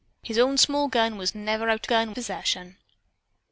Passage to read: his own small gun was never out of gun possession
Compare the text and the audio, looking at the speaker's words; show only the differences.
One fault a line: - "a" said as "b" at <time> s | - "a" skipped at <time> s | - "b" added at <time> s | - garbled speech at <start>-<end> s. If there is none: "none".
none